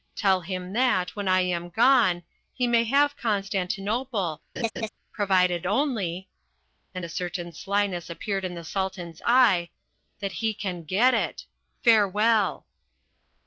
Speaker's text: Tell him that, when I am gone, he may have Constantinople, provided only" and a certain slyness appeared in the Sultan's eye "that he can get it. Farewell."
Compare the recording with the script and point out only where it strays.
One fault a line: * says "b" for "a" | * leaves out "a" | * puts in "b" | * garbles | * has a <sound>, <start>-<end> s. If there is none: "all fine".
* has a laugh, 4.6-4.9 s